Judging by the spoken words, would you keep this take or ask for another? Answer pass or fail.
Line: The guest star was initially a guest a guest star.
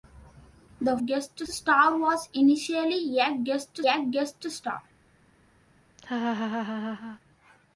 pass